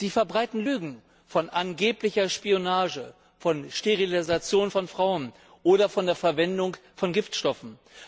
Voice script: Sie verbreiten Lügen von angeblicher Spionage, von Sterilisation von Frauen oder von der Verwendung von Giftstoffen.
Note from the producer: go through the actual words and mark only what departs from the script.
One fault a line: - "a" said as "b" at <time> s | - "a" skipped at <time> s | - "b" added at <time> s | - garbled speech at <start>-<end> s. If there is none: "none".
none